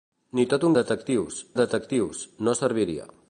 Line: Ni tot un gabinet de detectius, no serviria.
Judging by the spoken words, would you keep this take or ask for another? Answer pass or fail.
fail